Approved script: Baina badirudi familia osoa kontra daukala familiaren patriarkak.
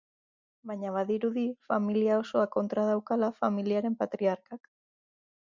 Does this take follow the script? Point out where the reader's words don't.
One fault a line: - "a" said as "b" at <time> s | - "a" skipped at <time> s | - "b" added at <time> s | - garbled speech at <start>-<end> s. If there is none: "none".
none